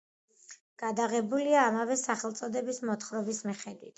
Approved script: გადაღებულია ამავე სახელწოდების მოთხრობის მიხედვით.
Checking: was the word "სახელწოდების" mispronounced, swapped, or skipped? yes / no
no